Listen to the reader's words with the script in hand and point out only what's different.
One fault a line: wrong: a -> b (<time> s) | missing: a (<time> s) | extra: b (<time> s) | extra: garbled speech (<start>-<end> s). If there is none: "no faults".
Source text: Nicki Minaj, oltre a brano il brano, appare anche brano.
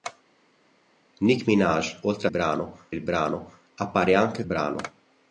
no faults